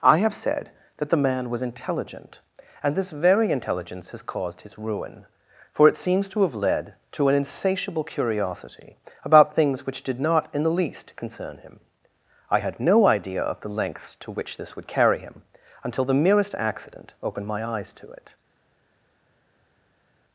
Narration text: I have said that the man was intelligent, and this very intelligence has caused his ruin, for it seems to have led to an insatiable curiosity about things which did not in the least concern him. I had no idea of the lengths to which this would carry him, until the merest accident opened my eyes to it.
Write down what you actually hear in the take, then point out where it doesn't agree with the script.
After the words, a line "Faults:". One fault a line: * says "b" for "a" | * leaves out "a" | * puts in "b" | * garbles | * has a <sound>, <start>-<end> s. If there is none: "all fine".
I have said that the man was intelligent, and this very intelligence has caused his ruin, for it seems to have led to an insatiable curiosity about things which did not in the least concern him. I had no idea of the lengths to which this would carry him, until the merest accident opened my eyes to it.
Faults:
all fine